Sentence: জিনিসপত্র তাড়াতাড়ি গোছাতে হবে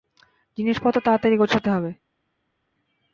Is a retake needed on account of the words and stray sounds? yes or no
no